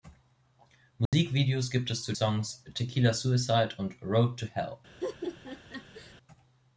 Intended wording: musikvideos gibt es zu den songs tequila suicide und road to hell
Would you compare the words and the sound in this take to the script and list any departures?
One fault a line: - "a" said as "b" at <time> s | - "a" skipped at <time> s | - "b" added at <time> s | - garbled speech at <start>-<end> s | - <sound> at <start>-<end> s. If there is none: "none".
- dropout at 1.1-1.1 s
- "den" skipped at 2.1 s
- laugh at 5.0-6.1 s